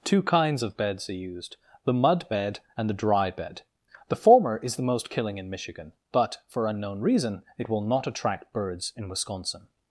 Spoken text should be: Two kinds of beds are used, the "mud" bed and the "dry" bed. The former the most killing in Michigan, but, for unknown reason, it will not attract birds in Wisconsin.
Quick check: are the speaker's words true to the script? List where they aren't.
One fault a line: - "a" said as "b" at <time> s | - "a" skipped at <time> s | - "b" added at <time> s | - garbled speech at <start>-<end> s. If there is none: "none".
- "is" added at 4.6 s